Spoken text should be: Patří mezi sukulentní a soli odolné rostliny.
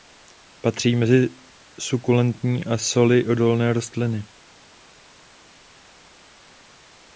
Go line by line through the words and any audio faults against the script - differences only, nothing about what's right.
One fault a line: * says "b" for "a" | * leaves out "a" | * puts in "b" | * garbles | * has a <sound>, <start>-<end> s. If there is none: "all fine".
all fine